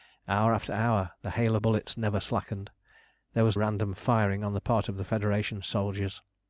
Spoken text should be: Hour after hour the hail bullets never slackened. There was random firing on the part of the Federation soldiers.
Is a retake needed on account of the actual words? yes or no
no